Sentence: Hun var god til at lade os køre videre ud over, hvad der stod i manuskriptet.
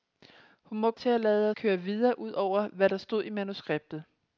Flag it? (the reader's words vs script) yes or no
yes